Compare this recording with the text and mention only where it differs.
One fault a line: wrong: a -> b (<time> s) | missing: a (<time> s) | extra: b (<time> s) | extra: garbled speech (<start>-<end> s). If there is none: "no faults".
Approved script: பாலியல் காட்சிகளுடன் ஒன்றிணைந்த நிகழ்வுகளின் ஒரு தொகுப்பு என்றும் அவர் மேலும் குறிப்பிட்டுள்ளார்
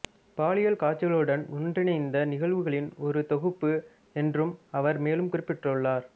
no faults